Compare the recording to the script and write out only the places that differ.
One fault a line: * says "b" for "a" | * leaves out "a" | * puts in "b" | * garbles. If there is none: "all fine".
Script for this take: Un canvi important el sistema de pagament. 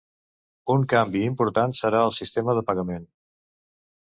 * puts in "serà"